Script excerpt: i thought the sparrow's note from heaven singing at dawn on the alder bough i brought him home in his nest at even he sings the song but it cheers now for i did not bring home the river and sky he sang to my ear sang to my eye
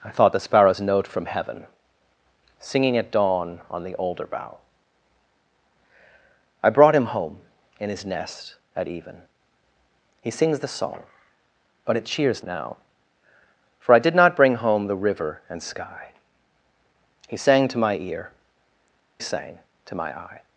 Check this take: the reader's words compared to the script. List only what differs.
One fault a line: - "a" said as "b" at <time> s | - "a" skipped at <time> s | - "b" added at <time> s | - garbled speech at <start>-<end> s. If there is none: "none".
none